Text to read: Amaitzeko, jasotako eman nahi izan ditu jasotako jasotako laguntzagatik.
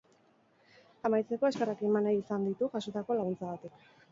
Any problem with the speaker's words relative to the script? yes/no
yes